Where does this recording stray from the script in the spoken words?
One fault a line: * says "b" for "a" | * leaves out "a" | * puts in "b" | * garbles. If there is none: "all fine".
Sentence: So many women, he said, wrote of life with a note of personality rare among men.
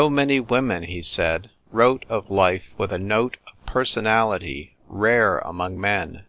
all fine